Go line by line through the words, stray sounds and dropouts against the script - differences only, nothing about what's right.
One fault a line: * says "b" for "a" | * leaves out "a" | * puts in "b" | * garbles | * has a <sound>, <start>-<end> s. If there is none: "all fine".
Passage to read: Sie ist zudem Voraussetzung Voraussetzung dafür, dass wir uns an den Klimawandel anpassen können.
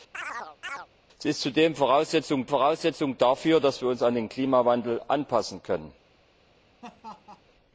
* has a chirp, 0.1-0.9 s
* has a laugh, 6.8-7.4 s